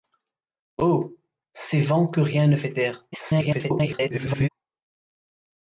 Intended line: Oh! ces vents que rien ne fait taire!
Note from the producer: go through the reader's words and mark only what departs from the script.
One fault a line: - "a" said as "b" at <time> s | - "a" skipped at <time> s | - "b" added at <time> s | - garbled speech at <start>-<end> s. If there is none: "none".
- garbled speech at 3.1-4.5 s